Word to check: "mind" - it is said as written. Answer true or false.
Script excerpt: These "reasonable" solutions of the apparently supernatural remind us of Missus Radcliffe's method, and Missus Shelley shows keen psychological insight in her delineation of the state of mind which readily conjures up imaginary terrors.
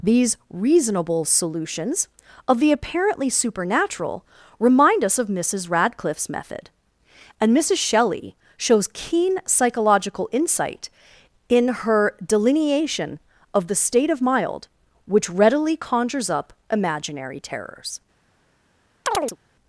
false